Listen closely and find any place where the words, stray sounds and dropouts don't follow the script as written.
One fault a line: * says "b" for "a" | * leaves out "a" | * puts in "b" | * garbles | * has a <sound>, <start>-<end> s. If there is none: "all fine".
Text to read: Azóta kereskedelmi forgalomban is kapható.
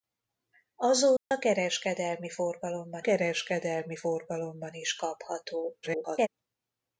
* has a dropout, 1.2-1.3 s
* puts in "kereskedelmi forgalomban"
* garbles